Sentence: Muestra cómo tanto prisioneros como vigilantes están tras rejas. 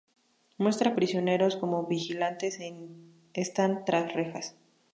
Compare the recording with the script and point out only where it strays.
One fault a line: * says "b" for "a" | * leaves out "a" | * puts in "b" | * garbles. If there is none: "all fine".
* leaves out "cómo tanto"